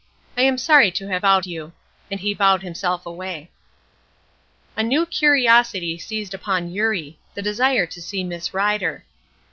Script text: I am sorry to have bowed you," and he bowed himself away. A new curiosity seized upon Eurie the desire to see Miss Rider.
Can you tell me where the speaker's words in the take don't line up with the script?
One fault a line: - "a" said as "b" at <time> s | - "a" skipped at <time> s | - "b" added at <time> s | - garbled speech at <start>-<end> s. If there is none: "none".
none